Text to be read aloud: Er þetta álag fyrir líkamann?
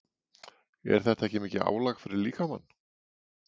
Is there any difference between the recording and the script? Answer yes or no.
yes